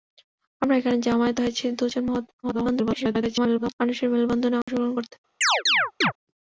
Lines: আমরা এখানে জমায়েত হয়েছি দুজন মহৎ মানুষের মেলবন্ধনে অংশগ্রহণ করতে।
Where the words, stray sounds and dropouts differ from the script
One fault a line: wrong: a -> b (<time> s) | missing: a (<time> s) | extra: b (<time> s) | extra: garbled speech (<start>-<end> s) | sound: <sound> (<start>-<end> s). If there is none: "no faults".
extra: garbled speech (2.4-3.7 s)
sound: dropout (4.6-4.7 s)
sound: chirp (5.4-6.1 s)